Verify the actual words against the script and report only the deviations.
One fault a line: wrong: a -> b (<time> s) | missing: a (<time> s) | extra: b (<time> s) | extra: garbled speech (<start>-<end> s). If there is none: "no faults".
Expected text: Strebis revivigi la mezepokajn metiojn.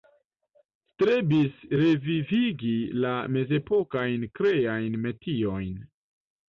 extra: kreajn (4.4 s)